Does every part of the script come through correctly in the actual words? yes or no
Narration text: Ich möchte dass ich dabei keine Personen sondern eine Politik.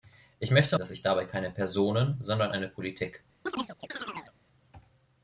yes